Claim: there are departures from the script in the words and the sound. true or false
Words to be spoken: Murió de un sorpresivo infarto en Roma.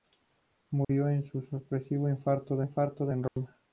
true